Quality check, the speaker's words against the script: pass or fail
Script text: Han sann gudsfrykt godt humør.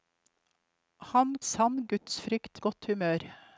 pass